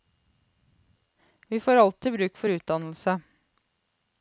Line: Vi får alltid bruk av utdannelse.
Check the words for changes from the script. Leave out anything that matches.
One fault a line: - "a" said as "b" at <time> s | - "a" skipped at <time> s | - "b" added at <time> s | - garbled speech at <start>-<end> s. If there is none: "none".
- "av" said as "for" at 2.4 s